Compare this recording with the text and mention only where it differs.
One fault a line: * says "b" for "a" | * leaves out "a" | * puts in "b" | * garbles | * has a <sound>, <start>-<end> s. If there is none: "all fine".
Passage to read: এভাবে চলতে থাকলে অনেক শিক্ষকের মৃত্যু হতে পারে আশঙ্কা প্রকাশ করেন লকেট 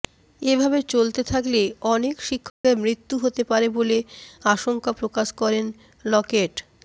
* has a dropout, 2.5-2.6 s
* puts in "বলে"